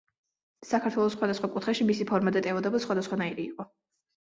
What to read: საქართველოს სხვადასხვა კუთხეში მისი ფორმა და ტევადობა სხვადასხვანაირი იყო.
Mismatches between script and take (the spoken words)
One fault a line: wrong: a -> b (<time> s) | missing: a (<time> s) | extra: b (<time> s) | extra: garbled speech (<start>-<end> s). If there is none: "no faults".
no faults